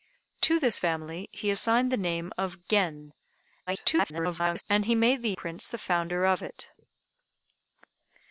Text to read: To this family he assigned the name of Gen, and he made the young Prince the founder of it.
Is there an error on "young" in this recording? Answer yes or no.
yes